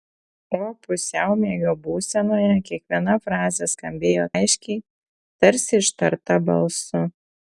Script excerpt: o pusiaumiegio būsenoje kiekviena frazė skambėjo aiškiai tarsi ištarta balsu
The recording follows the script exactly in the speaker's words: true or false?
true